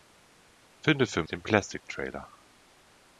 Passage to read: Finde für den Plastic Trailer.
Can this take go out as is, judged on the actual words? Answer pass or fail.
pass